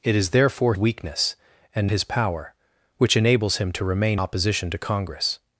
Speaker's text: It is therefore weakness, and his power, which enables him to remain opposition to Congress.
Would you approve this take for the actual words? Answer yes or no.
yes